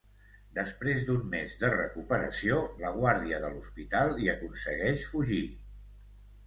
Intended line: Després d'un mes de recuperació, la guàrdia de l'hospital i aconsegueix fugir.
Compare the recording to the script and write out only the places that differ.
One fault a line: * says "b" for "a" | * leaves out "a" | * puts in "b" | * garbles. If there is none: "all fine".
all fine